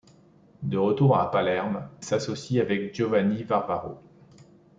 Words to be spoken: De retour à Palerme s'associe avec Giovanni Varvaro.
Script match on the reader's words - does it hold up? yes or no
yes